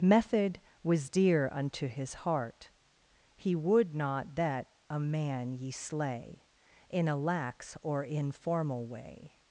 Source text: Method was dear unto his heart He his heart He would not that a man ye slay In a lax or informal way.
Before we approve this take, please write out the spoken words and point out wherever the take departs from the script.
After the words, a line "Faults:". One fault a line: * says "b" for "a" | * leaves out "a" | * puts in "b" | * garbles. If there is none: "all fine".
Method was dear unto his heart He would not that a man ye slay In a lax or informal way.
Faults:
* leaves out "his heart He"